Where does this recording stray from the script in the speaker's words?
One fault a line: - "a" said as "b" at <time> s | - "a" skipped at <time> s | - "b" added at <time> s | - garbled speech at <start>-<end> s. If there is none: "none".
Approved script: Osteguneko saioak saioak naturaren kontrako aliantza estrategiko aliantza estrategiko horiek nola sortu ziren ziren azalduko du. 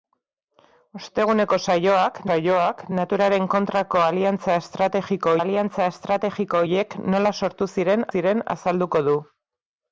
none